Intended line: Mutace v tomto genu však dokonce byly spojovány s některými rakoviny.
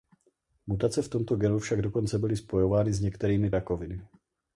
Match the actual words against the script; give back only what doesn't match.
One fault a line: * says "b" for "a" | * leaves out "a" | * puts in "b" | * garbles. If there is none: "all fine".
all fine